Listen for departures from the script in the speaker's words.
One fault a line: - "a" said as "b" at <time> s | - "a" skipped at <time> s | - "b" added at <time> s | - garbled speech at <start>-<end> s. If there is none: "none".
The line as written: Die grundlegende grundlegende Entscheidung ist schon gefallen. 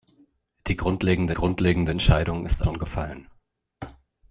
none